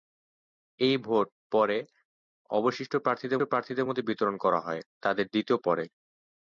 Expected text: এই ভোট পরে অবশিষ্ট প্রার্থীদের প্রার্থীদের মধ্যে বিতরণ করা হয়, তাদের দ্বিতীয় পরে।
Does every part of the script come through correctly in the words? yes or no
yes